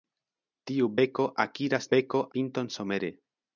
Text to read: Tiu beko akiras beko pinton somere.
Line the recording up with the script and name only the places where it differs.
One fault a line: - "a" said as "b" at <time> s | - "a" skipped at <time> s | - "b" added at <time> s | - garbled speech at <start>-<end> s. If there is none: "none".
none